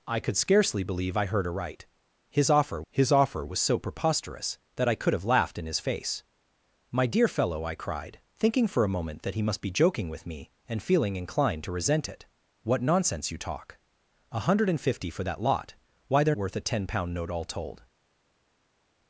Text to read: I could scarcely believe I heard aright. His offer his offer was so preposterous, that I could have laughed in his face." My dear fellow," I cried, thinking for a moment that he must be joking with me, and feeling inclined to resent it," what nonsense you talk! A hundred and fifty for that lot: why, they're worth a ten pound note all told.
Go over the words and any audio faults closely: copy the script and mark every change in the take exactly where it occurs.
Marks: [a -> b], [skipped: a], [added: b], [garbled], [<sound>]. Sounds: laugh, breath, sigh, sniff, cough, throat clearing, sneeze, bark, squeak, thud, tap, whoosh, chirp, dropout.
I could scarcely believe I heard aright. His offer his offer was so preposterous, that I could have laughed in his face." My dear fellow," I cried, thinking for a moment that he must be joking with me, and feeling inclined to resent it," what nonsense you talk! A hundred and fifty for that lot: why, they're worth a ten pound note all told.